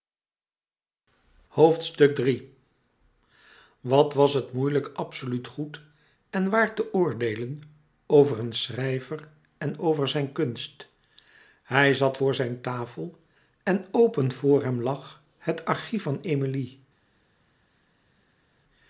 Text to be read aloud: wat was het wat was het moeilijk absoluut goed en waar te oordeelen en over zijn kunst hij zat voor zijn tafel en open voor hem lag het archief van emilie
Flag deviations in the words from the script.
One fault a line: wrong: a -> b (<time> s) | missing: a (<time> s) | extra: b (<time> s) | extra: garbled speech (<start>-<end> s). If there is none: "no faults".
missing: wat was het (4.5 s)
extra: over een schrijver (8.1 s)